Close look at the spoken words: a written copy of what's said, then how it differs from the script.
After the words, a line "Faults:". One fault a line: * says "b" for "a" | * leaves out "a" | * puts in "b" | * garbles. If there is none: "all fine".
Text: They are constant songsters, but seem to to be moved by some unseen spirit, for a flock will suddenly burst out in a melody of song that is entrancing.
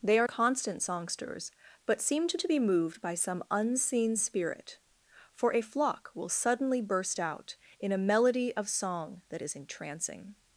They are constant songsters, but seem to to be moved by some unseen spirit, for a flock will suddenly burst out in a melody of song that is entrancing.
Faults:
all fine